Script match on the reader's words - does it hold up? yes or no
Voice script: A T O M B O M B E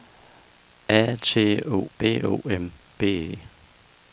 no